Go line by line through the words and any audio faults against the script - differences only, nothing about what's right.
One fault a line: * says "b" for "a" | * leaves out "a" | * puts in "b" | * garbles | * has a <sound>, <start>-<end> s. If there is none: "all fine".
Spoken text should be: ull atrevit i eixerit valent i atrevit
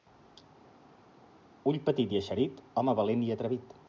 * says "petit" for "atrevit"
* puts in "home"